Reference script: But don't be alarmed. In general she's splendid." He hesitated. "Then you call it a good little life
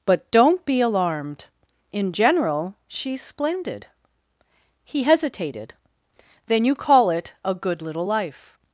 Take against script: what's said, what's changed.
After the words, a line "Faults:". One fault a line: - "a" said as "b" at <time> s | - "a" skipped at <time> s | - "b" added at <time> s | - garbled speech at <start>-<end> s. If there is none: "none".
But don't be alarmed. In general she's splendid." He hesitated. "Then you call it a good little life
Faults:
none